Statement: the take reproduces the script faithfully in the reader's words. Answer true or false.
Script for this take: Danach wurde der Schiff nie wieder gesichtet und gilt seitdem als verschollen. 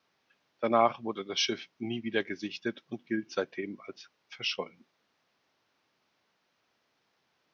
false